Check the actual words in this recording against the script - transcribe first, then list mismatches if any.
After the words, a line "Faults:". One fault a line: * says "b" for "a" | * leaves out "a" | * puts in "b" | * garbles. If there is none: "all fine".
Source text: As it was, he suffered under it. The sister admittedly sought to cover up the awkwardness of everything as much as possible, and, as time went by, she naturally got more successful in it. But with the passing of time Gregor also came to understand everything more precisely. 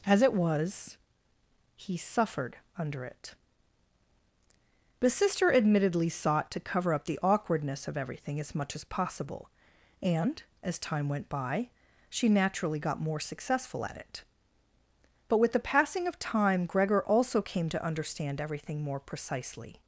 As it was, he suffered under it. The sister admittedly sought to cover up the awkwardness of everything as much as possible, and, as time went by, she naturally got more successful at it. But with the passing of time Gregor also came to understand everything more precisely.
Faults:
* says "at" for "in"